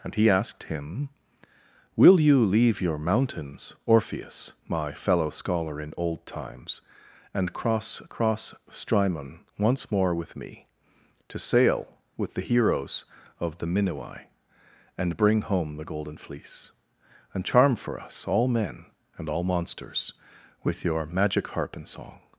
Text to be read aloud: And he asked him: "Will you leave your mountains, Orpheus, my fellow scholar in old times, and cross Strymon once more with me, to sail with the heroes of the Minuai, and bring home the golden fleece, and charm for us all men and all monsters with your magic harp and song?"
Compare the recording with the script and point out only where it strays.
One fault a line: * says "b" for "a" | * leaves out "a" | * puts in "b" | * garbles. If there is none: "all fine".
* puts in "cross"